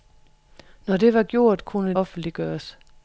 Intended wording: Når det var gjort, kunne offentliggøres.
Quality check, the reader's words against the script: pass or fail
pass